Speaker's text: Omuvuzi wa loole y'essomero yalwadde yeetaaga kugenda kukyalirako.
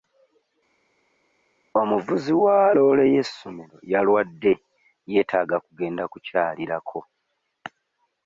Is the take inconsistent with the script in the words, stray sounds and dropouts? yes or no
no